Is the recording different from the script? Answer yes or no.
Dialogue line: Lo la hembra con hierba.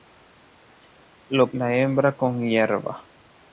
no